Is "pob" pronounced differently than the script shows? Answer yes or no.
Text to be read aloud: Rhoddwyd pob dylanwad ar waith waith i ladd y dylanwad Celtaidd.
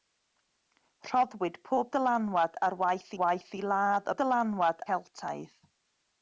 no